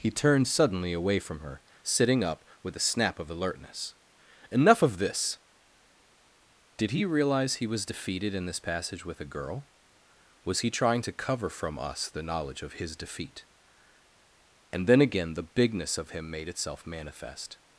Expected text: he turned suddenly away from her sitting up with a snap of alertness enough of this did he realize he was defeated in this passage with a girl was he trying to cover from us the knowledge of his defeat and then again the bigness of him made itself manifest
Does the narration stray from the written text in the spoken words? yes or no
no